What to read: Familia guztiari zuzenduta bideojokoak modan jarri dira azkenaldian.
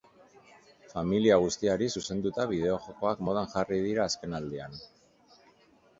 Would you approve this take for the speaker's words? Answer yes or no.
yes